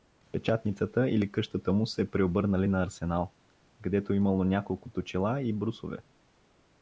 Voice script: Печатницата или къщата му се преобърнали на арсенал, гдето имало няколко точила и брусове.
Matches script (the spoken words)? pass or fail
pass